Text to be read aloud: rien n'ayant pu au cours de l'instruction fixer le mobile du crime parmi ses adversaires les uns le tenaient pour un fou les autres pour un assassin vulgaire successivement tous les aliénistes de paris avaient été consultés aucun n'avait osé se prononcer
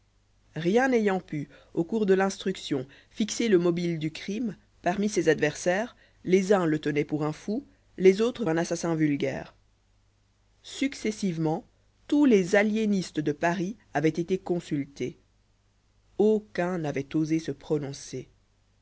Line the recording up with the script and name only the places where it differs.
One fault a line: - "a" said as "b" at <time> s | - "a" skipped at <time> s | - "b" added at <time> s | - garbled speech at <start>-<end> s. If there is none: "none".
- "pour" skipped at 8.5 s